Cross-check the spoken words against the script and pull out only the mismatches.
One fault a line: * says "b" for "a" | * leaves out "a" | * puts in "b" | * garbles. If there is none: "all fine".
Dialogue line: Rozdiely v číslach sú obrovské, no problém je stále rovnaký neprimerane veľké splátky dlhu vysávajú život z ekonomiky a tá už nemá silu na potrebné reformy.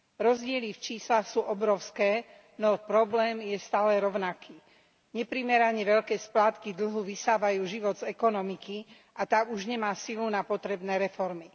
all fine